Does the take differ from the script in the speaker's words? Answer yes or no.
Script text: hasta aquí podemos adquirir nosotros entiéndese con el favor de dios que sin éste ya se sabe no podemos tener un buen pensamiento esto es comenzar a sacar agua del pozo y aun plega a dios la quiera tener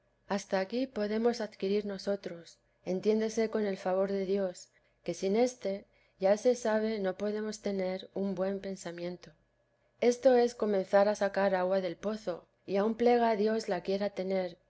no